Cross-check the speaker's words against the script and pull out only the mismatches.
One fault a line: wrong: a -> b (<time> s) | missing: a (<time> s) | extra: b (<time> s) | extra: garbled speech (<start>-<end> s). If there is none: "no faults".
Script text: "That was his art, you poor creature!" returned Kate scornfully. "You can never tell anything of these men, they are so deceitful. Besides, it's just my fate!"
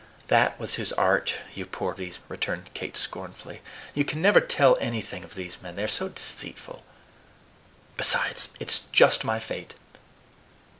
wrong: creature -> these (1.9 s)